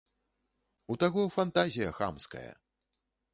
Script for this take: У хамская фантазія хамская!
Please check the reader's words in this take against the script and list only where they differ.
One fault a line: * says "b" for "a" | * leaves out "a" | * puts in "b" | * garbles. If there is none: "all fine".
* says "таго" for "хамская"